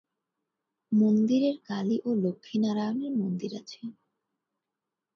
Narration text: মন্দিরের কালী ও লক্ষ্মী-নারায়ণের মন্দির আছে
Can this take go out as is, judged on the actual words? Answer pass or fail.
pass